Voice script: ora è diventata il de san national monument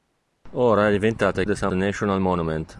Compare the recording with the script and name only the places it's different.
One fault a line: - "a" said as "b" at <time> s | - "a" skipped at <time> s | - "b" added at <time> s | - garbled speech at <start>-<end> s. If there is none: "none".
none